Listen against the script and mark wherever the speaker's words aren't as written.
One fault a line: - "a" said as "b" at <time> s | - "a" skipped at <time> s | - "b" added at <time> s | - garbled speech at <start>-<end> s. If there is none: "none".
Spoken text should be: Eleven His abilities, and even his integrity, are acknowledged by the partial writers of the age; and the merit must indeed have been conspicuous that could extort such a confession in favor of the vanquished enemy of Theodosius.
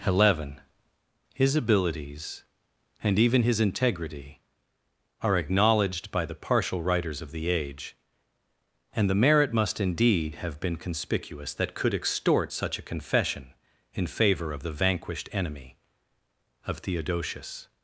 none